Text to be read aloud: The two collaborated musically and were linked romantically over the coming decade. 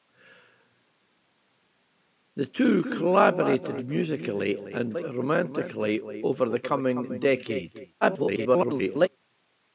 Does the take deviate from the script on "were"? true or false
true